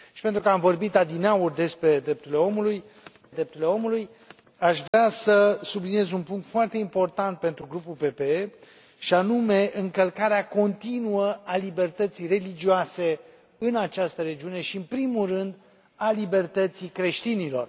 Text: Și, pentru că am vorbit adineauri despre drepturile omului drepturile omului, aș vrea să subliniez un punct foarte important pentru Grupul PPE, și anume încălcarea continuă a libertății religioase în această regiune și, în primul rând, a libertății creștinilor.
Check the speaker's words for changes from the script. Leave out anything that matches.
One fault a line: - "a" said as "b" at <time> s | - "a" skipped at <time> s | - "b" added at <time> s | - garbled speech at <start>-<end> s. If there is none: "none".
none